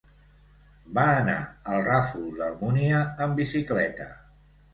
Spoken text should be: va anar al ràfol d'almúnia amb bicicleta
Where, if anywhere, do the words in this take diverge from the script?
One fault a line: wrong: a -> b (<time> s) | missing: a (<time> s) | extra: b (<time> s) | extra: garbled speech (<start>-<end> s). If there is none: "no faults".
no faults